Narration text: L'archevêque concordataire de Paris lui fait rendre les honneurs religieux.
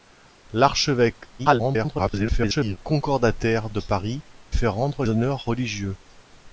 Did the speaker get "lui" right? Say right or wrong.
wrong